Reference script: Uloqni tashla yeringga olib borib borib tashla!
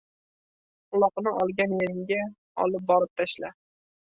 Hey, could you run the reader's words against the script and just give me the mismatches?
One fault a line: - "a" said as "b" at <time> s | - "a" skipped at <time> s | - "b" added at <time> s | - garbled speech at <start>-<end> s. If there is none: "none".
- "tashla" said as "olgan" at 1.4 s
- "borib" skipped at 3.1 s